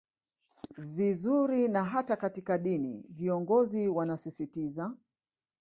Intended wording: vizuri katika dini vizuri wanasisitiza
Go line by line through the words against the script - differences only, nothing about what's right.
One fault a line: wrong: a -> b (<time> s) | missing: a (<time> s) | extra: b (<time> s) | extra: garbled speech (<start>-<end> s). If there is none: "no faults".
extra: na hata (1.7 s)
wrong: vizuri -> viongozi (3.1 s)